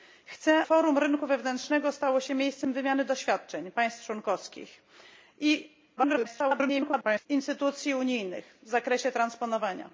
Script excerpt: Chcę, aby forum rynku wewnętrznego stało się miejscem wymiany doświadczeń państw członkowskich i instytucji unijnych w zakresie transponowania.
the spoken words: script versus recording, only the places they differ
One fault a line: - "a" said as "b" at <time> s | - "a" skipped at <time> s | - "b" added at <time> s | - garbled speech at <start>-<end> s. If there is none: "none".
- "aby" skipped at 0.7 s
- garbled speech at 6.0-7.3 s